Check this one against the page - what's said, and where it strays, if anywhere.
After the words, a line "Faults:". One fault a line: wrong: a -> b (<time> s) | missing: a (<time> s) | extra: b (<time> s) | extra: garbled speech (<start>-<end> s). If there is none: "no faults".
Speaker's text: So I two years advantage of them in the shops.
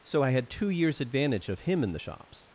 So I had two years advantage of him in the shops.
Faults:
extra: had (0.3 s)
wrong: them -> him (1.6 s)